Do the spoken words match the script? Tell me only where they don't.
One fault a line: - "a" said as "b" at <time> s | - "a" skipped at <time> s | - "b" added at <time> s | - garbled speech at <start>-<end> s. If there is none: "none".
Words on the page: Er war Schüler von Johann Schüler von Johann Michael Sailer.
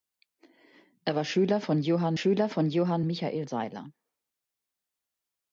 none